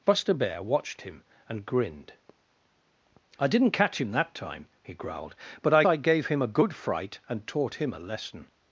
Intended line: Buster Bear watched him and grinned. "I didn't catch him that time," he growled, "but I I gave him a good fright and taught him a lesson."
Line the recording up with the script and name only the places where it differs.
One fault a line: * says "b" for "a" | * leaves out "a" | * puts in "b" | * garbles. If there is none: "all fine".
all fine